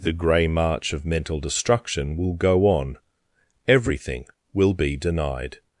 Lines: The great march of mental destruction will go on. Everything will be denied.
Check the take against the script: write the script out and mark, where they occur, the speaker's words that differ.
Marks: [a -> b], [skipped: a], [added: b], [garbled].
The [great -> grey] march of mental destruction will go on. Everything will be denied.